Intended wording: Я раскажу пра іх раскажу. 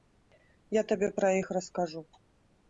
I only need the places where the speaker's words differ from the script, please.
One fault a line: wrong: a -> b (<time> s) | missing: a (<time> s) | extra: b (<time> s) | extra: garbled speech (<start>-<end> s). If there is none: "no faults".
wrong: раскажу -> табе (0.9 s)